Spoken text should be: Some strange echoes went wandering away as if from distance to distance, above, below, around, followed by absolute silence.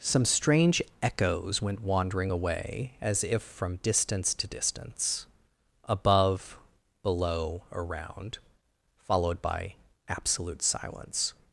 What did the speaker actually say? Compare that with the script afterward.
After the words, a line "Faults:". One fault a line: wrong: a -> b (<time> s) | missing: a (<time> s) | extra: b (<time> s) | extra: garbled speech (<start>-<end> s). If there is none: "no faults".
Some strange echoes went wandering away as if from distance to distance, above, below, around, followed by absolute silence.
Faults:
no faults